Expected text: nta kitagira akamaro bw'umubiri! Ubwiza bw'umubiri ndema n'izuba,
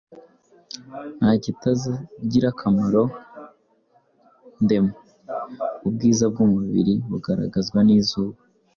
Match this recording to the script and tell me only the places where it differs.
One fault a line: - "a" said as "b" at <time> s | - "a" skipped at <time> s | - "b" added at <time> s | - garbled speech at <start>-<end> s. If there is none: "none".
- "bw'umubiri" said as "ndema" at 4.6 s
- "ndema" said as "bugaragazwa" at 7.1 s